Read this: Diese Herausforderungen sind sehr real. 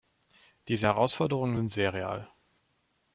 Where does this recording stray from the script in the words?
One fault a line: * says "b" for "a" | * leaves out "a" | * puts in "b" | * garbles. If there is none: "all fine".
all fine